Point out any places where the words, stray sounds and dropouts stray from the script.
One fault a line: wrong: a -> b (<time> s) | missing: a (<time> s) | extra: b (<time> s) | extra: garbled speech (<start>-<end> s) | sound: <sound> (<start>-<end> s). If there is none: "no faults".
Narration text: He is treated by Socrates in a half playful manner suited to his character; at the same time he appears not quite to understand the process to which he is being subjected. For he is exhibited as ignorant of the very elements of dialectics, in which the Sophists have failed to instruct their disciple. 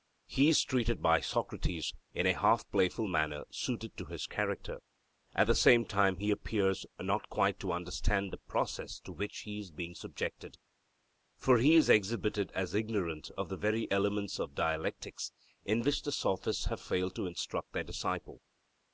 no faults